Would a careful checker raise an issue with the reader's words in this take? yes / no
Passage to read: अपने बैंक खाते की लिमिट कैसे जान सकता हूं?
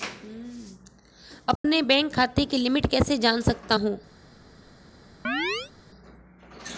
no